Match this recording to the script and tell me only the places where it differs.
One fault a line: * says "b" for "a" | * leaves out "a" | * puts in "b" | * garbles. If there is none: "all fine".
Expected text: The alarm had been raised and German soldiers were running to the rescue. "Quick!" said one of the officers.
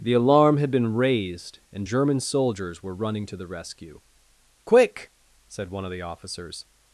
all fine